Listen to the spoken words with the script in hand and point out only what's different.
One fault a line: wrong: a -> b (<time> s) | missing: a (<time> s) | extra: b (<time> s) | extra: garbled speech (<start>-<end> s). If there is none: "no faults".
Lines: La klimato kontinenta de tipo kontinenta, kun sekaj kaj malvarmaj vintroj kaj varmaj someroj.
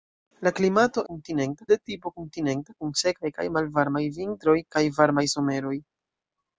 no faults